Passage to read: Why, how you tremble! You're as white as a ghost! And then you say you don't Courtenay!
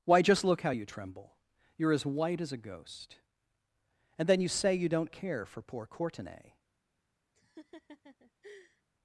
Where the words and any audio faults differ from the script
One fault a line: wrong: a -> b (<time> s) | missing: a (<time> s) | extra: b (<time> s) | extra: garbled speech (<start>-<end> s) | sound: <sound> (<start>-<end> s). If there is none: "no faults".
extra: just look (0.2 s)
extra: care for poor (5.1 s)
sound: laugh (7.3-8.8 s)